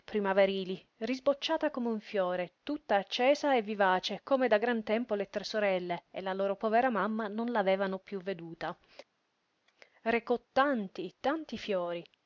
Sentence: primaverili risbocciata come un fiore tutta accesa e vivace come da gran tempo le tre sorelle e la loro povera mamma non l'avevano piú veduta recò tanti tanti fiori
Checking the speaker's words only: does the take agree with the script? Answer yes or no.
yes